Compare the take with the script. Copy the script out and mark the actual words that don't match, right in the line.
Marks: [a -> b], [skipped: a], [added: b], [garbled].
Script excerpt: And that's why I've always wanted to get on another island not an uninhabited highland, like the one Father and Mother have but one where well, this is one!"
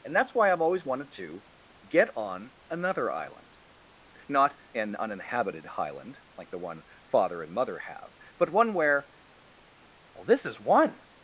And that's why I've always wanted to get on another island not an uninhabited highland, like the one Father and Mother have but one where well, this is one!"